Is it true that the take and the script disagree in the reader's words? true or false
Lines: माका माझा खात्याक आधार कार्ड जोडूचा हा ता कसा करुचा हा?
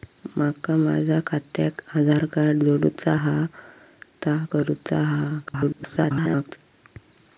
true